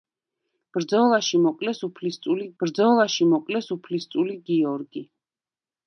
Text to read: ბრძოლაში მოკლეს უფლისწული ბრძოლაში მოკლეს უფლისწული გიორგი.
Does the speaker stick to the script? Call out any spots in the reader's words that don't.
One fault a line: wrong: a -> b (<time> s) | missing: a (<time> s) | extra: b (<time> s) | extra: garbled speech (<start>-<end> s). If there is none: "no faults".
no faults